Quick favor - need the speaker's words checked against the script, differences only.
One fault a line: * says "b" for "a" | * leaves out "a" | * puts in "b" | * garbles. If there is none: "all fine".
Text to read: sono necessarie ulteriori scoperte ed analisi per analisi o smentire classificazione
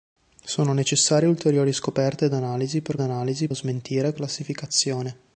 all fine